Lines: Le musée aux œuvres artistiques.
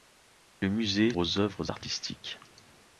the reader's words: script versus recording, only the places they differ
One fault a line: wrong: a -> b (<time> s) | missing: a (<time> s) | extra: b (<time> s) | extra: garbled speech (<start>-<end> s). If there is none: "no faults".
no faults